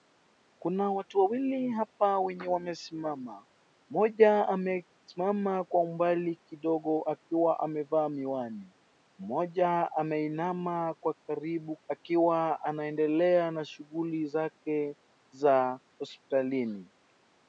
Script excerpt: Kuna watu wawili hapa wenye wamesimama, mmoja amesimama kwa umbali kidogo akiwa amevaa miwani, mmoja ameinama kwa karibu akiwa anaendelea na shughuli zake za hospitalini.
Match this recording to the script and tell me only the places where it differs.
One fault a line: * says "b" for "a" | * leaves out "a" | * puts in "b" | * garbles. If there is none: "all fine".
all fine